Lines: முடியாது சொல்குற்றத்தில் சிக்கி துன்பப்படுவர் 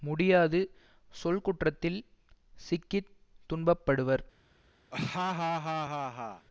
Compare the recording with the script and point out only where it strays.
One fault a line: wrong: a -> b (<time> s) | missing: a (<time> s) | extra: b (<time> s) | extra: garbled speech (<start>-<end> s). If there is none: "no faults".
no faults